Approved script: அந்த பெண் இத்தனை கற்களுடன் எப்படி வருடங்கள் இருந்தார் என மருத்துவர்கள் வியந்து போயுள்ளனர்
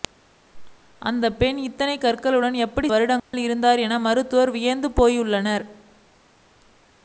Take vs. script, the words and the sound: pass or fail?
fail